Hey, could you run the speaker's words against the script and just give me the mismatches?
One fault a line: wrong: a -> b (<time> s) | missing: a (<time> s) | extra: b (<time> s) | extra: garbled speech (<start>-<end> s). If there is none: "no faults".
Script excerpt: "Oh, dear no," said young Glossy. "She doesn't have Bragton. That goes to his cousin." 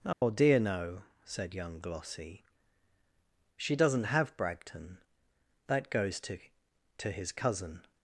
extra: to (7.0 s)